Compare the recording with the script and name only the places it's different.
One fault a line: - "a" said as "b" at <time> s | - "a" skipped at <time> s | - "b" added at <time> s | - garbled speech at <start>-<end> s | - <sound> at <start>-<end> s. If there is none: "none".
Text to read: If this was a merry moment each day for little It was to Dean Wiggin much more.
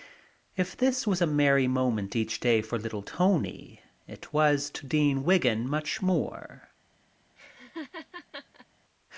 - "Tony" added at 3.0 s
- laugh at 7.4-8.7 s